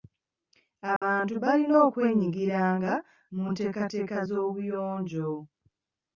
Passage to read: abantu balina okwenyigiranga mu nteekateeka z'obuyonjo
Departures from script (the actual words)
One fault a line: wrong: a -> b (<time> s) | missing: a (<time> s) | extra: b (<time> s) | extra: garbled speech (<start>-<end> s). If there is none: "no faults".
no faults